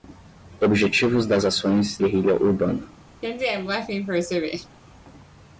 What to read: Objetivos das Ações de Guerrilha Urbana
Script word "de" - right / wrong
wrong